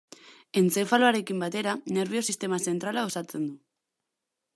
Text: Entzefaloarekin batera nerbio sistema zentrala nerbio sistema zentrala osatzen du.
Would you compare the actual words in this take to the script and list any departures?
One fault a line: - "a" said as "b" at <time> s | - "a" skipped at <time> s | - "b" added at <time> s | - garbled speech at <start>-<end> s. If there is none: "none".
- "nerbio sistema zentrala" skipped at 3.1 s